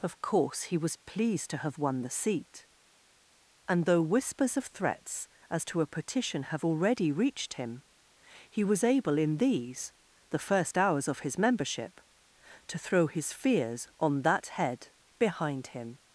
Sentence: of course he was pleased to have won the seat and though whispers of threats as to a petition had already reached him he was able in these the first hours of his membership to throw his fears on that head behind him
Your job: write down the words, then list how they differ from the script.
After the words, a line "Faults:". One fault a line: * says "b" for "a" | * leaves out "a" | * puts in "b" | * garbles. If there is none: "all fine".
of course he was pleased to have won the seat and though whispers of threats as to a petition have already reached him he was able in these the first hours of his membership to throw his fears on that head behind him
Faults:
* says "have" for "had"